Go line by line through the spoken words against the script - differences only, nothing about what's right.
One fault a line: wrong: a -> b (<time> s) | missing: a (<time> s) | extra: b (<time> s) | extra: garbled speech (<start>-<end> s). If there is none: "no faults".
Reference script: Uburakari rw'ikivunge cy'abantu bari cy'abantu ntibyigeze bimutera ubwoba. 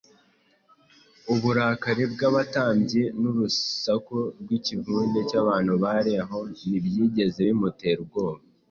extra: bw'abatambyi n'urusaku (2.1 s)
wrong: cy'abantu -> aho (6.2 s)